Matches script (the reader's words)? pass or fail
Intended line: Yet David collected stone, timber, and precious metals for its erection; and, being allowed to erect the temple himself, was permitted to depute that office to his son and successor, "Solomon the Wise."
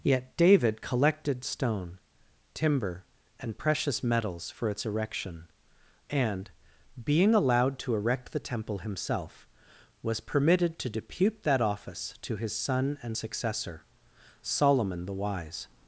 pass